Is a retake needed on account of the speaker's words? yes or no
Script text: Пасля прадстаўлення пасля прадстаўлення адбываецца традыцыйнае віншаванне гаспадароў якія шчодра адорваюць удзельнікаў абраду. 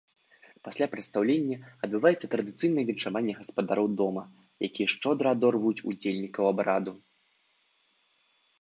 yes